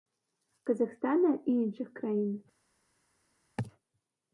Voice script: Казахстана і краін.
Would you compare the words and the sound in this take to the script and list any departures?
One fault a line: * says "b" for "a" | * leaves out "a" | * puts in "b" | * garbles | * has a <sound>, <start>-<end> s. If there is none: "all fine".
* puts in "іншых"